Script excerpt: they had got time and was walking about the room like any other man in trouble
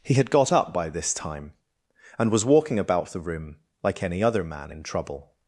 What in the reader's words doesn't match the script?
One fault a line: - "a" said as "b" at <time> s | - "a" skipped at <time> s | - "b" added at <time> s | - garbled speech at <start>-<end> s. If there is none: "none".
- "they" said as "he" at 0.0 s
- "up by this" added at 0.5 s